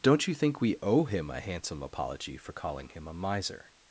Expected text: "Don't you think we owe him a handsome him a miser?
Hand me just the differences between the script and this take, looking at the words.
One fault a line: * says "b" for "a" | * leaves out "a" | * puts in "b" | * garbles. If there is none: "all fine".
* puts in "apology for calling"